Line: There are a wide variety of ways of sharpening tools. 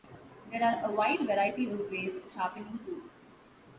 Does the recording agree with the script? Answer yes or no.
yes